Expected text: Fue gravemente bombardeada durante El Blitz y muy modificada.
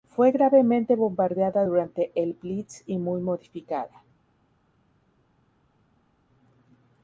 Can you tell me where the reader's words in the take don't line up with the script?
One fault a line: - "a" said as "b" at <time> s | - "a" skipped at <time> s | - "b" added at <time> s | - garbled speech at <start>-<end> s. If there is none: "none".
none